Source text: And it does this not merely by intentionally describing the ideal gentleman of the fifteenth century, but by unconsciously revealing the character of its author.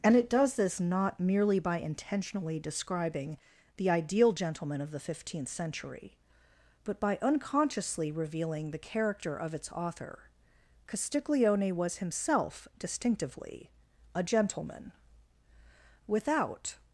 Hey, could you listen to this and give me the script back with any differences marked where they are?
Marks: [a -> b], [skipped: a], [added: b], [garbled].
And it does this not merely by intentionally describing the ideal gentleman of the fifteenth century, but by unconsciously revealing the character of its author. [added: Castiglione was himself distinctively a gentleman Without]